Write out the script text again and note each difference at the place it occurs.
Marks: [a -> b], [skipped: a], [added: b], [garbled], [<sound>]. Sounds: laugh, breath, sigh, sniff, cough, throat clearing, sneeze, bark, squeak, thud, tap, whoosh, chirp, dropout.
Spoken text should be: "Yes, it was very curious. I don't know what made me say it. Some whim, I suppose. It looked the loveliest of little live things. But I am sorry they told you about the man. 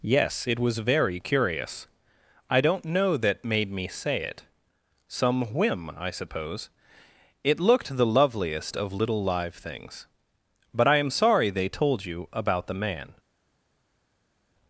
"Yes, it was very curious. I don't know [what -> that] made me say it. Some whim, I suppose. It looked the loveliest of little live things. But I am sorry they told you about the man.